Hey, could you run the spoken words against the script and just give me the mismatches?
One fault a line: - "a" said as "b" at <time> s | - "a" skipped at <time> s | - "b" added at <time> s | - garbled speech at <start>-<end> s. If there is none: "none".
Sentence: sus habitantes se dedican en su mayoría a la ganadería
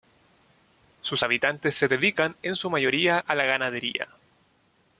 none